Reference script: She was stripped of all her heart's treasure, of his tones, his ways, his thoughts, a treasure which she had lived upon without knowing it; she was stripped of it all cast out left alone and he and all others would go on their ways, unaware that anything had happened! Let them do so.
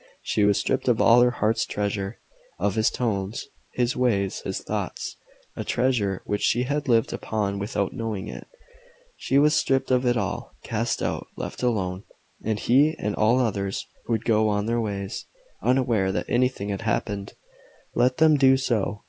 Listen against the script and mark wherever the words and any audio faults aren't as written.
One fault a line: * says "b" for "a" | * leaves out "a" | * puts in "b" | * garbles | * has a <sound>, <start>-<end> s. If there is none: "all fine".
all fine